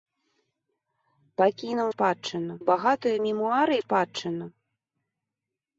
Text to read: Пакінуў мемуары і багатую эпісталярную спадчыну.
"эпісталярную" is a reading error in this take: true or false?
true